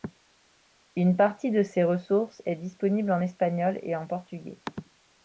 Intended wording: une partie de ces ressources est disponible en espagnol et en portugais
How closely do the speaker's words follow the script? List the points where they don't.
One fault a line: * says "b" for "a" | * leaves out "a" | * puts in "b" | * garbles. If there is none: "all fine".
all fine